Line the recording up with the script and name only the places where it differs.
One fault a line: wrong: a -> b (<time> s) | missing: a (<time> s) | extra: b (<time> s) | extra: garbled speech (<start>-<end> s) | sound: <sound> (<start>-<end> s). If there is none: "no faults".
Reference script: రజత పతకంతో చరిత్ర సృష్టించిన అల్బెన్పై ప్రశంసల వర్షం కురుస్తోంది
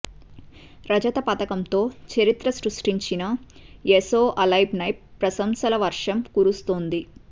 extra: ఎసో (3.9 s)